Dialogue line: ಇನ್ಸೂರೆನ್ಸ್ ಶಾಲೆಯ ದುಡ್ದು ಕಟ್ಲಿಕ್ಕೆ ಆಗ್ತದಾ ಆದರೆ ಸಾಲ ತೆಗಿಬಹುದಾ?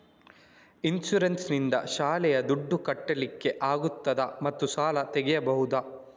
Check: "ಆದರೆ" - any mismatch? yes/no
yes